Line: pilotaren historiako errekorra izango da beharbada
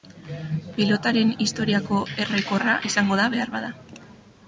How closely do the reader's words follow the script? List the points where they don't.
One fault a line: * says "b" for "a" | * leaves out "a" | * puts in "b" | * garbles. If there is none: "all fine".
all fine